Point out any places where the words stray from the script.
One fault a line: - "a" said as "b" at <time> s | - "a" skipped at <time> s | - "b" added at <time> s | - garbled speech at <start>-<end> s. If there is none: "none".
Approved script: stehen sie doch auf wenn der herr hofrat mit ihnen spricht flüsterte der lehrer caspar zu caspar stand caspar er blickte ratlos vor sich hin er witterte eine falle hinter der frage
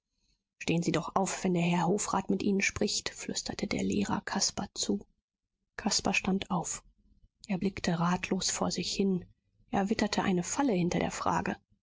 - "caspar" said as "auf" at 6.5 s